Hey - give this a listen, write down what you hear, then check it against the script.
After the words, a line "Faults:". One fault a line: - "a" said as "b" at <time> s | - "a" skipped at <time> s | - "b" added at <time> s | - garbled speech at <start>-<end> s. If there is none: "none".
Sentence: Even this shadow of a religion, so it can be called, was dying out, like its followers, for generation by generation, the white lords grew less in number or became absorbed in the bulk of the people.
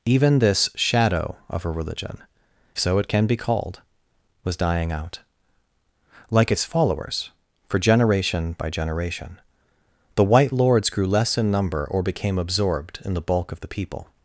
Even this shadow of a religion, so it can be called, was dying out, like its followers, for generation by generation, the white lords grew less in number or became absorbed in the bulk of the people.
Faults:
none